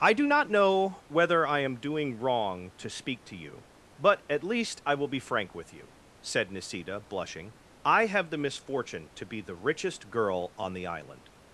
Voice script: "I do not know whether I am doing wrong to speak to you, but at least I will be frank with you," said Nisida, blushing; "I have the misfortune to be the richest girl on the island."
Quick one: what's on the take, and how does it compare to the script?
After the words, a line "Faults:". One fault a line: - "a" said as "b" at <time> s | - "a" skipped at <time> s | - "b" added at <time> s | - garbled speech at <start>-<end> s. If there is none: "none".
"I do not know whether I am doing wrong to speak to you, but at least I will be frank with you," said Nisida, blushing; "I have the misfortune to be the richest girl on the island."
Faults:
none